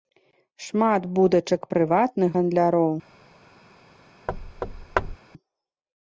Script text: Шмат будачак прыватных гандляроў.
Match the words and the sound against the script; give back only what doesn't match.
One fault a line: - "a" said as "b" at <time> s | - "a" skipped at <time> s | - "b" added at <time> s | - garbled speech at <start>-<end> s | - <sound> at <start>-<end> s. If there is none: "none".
- thud at 4.3-5.2 s